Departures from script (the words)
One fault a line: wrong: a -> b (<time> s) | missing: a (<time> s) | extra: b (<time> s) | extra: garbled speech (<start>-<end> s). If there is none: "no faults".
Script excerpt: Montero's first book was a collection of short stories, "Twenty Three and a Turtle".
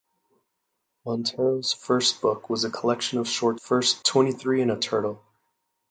wrong: stories -> first (3.5 s)